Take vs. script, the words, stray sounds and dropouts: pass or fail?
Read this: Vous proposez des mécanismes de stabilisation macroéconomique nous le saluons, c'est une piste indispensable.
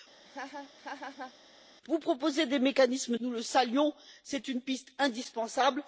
fail